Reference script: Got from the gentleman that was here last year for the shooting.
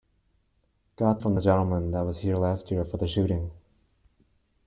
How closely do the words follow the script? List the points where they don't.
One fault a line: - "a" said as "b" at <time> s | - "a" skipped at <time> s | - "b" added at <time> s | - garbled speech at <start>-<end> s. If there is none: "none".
none